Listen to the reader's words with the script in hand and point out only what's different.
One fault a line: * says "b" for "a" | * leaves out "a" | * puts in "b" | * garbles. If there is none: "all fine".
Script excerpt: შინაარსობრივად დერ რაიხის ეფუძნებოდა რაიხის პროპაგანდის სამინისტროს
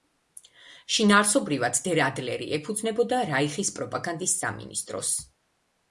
* says "ადლერი" for "რაიხის"